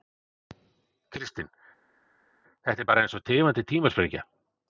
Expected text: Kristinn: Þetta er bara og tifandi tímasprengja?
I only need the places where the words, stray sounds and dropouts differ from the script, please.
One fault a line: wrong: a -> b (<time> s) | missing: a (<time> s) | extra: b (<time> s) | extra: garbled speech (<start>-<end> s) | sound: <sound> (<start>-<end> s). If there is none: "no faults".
extra: eins (3.1 s)